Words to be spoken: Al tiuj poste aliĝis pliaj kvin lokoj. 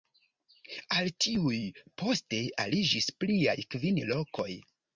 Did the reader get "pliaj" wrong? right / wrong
right